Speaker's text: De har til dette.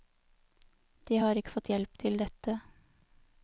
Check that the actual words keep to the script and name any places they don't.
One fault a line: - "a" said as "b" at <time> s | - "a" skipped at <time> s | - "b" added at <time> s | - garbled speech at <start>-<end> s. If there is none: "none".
- "ikke fått hjelp" added at 1.4 s